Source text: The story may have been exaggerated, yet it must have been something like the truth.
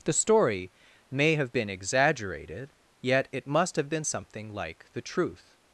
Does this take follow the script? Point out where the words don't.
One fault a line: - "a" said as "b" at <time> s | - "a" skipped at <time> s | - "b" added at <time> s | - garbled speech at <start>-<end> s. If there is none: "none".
none